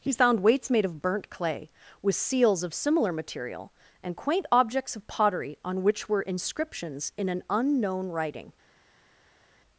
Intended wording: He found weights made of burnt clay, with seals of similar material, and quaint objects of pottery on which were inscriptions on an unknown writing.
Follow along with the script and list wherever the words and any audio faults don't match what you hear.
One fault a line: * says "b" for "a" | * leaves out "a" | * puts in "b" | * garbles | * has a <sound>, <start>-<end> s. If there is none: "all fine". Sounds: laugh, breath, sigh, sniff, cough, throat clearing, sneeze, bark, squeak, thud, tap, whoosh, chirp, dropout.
* says "in" for "on"